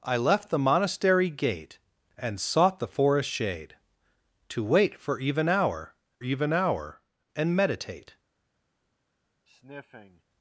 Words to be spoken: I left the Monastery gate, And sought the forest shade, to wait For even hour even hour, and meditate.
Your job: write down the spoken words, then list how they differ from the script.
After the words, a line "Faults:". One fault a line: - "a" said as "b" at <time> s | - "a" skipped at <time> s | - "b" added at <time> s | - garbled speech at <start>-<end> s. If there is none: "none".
I left the Monastery gate, And sought the forest shade, to wait For even hour even hour, and meditate.
Faults:
none